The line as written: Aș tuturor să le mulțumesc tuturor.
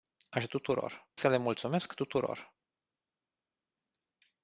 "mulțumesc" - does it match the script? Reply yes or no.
yes